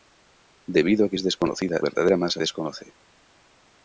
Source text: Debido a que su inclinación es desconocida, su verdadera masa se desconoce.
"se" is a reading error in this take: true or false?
true